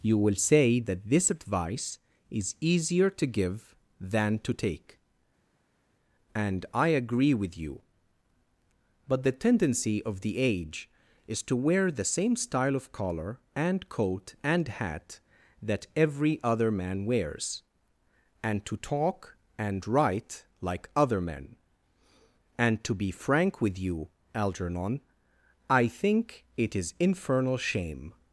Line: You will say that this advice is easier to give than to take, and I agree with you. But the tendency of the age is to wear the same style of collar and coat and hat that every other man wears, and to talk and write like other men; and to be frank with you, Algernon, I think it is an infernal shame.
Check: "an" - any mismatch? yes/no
yes